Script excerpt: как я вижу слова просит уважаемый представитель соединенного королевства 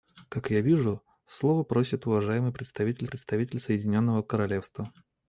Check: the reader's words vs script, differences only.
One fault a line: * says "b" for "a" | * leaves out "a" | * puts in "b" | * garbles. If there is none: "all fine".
* puts in "представитель"